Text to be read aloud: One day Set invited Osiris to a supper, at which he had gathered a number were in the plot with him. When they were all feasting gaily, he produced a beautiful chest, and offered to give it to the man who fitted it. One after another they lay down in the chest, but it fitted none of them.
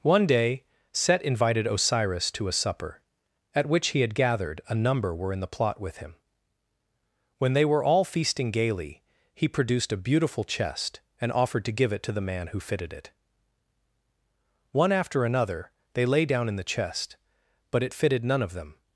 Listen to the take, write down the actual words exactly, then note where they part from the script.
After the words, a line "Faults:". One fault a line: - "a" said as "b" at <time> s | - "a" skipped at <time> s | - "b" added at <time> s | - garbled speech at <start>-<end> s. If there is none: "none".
One day Set invited Osiris to a supper, at which he had gathered a number were in the plot with him. When they were all feasting gaily, he produced a beautiful chest, and offered to give it to the man who fitted it. One after another they lay down in the chest, but it fitted none of them.
Faults:
none